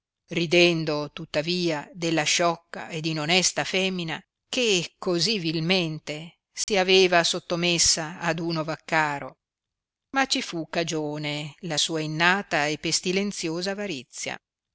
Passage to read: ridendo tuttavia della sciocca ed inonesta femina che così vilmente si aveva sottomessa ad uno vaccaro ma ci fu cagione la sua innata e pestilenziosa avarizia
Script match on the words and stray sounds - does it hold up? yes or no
no